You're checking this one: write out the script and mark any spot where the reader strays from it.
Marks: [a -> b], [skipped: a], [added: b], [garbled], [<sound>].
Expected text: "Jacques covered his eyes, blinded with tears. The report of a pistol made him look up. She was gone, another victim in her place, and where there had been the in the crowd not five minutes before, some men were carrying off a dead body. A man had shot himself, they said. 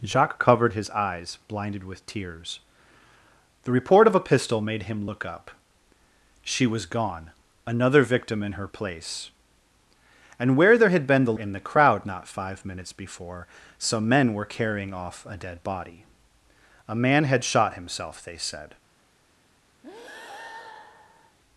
"Jacques covered his eyes, blinded with tears. The report of a pistol made him look up. She was gone, another victim in her place, and where there had been the in the crowd not five minutes before, some men were carrying off a dead body. A man had shot himself, they said. [breath]